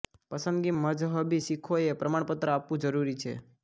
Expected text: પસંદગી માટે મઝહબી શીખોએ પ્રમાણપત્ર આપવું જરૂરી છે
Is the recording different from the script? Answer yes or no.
yes